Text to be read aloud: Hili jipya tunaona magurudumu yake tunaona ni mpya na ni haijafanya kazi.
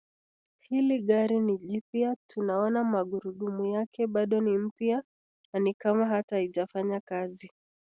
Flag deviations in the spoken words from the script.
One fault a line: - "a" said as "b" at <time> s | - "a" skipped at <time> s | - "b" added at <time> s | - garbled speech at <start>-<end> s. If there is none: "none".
- "gari ni" added at 1.0 s
- "tunaona" said as "bado" at 4.1 s
- "kama hata" added at 5.7 s